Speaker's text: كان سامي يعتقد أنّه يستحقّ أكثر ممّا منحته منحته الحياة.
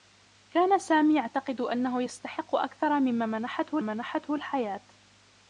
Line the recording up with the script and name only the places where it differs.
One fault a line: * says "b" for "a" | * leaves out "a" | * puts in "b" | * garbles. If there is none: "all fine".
all fine